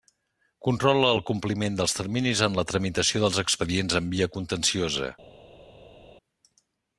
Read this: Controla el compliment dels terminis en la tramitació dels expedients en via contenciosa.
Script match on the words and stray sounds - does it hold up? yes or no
yes